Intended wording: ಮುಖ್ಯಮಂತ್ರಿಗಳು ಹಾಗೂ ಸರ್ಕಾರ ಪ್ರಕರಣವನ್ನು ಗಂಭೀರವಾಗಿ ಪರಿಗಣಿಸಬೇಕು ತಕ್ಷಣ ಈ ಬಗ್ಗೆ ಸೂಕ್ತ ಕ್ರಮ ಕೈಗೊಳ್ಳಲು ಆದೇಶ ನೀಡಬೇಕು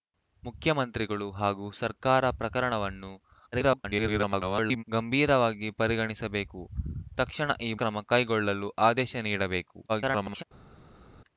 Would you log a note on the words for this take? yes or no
yes